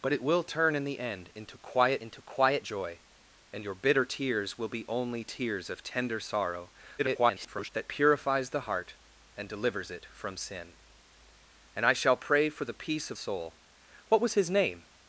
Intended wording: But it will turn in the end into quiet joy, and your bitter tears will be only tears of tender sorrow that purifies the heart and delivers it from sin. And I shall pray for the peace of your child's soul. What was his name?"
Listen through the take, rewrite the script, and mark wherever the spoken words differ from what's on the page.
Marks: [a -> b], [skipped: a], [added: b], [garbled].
But it will turn in the end into quiet [added: into quiet] joy, and your bitter tears will be only tears of tender sorrow [garbled] that purifies the heart and delivers it from sin. And I shall pray for the peace of [skipped: your child's] soul. What was his name?"